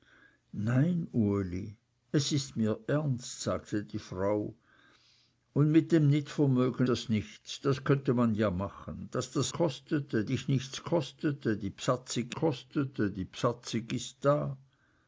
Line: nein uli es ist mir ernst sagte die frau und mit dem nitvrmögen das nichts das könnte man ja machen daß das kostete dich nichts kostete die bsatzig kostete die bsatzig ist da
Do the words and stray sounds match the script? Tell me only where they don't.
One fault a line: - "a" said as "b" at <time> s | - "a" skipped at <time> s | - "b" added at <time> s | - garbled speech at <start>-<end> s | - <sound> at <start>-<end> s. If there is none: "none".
none